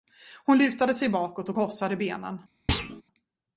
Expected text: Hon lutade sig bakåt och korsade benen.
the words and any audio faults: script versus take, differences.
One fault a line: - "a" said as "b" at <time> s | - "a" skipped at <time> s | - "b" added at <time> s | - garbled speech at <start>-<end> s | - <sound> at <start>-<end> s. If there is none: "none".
- thud at 2.7-3.0 s